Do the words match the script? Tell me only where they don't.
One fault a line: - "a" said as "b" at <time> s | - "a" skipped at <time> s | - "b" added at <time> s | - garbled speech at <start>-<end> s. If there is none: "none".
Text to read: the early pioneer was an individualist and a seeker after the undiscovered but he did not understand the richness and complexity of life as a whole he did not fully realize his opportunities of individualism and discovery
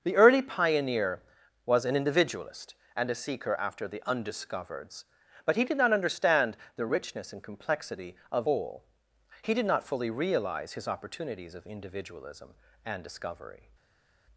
- "life as a" skipped at 8.5 s